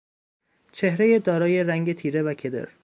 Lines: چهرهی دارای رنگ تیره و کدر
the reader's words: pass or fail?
pass